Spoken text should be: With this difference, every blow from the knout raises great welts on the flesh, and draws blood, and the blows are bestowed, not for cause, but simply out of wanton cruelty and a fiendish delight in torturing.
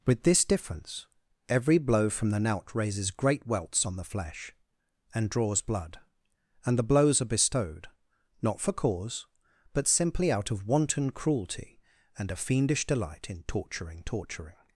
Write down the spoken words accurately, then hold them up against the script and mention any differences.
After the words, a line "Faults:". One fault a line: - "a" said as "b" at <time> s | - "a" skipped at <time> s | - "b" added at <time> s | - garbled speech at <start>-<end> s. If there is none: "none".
With this difference, every blow from the knout raises great welts on the flesh, and draws blood, and the blows are bestowed, not for cause, but simply out of wanton cruelty and a fiendish delight in torturing torturing.
Faults:
- "torturing" added at 14.0 s